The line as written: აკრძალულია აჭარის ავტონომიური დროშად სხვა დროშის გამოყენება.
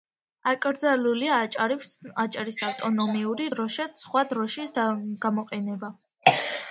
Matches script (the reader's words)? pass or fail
pass